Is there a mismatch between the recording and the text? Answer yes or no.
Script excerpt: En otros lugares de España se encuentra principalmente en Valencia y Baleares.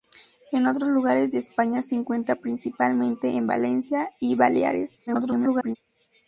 yes